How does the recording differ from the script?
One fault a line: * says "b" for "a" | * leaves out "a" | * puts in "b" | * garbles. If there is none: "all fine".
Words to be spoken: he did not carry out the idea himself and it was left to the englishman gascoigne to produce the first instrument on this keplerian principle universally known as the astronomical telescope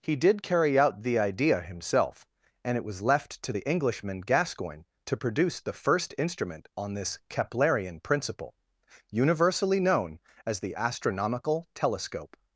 * leaves out "not"